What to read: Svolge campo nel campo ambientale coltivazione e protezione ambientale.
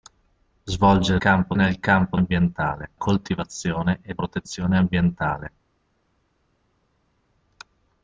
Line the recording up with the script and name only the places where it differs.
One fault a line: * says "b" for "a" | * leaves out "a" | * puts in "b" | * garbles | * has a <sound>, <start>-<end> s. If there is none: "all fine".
all fine